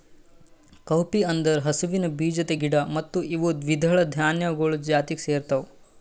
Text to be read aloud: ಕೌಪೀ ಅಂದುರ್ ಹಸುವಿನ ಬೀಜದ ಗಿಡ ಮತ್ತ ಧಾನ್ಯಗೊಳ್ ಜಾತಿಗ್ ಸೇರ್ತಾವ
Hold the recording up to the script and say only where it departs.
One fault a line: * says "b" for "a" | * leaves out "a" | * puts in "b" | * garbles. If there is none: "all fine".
* puts in "ಇವು ದ್ವಿದಳ"